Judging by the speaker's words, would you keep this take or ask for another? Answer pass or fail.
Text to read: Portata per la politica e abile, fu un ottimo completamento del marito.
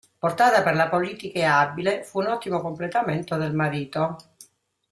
pass